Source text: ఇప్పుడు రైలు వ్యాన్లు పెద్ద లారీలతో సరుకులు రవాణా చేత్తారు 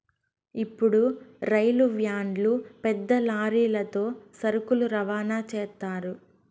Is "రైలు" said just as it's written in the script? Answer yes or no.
yes